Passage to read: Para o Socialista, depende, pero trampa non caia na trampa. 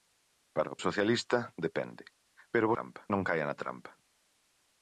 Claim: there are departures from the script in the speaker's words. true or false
false